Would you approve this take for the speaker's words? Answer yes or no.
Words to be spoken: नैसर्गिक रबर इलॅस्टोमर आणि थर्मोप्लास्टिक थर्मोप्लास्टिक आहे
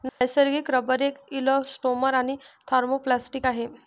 no